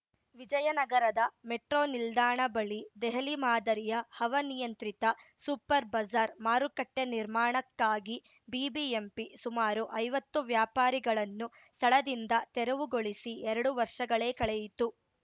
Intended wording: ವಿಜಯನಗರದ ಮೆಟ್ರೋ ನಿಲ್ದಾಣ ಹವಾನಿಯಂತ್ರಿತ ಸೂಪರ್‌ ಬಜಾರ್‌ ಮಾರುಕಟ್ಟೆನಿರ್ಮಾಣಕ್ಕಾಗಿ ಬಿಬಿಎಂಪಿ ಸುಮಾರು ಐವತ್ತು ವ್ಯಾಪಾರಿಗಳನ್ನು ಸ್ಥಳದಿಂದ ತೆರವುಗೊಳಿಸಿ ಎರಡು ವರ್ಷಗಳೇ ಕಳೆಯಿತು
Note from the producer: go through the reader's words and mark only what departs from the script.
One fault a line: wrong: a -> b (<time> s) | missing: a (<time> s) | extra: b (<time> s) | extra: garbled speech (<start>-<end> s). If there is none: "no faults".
extra: ಬಳಿ ದೆಹಲಿ ಮಾದರಿಯ (2.5 s)